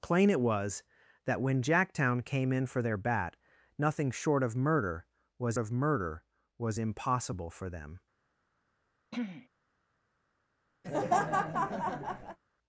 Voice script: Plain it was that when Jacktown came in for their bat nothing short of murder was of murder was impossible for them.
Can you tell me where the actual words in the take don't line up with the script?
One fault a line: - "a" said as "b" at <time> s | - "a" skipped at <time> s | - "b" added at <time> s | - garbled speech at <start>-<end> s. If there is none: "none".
none